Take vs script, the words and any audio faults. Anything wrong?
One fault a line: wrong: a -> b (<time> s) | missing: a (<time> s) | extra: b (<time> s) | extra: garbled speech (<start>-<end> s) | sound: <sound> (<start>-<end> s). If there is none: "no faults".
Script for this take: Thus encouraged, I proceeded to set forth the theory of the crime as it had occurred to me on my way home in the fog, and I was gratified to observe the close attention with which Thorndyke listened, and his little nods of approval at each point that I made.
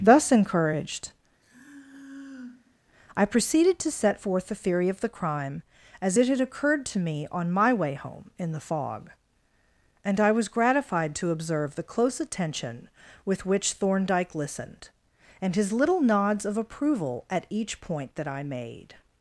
sound: sigh (1.4-2.8 s)